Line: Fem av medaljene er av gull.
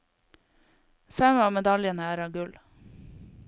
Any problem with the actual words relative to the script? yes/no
no